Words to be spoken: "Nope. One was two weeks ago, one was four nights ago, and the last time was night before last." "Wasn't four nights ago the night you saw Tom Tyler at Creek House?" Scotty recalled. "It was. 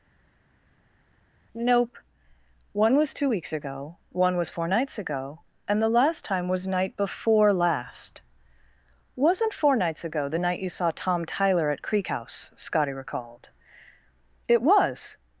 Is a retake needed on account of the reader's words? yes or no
no